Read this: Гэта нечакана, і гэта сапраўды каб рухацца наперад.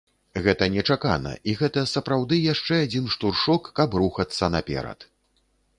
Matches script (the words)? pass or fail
fail